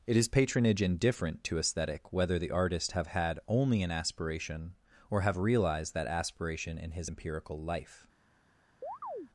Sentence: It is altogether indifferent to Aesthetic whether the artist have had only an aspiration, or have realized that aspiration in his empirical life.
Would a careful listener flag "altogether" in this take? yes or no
yes